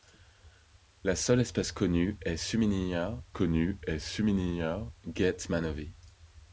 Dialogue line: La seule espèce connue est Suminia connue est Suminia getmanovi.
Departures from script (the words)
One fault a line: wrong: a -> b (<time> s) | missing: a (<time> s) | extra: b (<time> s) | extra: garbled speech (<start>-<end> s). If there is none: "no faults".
no faults